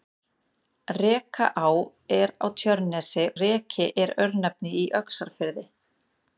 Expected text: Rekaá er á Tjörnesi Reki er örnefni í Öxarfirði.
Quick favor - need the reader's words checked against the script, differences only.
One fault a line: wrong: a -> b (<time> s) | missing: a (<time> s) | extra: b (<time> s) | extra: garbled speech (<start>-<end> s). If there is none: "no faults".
no faults